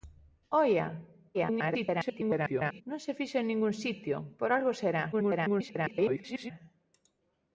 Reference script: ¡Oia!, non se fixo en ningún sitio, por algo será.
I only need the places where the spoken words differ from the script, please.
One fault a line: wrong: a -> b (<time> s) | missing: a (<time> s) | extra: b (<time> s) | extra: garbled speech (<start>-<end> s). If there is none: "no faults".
extra: garbled speech (1.3-2.8 s)
extra: garbled speech (5.1-6.5 s)